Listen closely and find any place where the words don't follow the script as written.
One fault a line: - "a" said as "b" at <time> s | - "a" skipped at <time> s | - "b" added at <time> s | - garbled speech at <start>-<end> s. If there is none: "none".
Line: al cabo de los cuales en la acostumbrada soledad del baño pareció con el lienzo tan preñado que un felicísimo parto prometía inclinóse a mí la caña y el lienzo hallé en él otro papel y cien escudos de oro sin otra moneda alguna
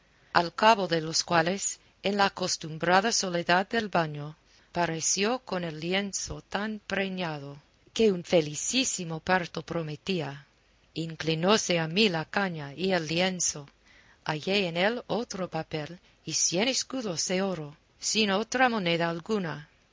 none